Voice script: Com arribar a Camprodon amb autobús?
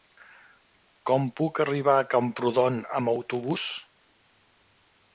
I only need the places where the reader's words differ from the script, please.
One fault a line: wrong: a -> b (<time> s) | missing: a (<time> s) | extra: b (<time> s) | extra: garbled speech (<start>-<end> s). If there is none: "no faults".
extra: puc (1.4 s)